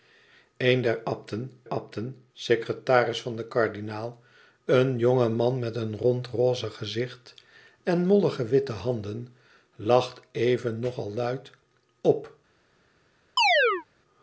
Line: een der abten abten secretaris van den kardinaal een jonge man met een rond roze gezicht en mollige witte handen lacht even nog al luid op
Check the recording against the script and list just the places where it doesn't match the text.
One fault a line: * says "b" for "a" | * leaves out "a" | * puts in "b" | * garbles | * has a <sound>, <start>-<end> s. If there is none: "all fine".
* has a chirp, 13.4-13.9 s